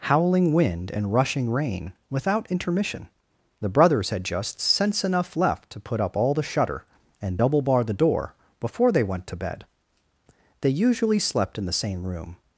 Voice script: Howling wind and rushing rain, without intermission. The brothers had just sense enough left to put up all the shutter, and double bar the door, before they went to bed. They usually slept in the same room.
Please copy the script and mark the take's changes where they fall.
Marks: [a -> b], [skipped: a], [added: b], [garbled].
Howling wind and rushing rain, without intermission. The brothers had just sense enough left to put up all the shutter, and double bar the door, before they went to bed. They usually slept in the same room.